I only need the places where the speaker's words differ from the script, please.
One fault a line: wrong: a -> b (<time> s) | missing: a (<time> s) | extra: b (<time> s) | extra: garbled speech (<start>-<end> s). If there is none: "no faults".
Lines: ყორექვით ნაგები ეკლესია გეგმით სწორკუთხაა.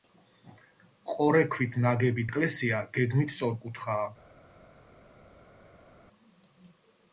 no faults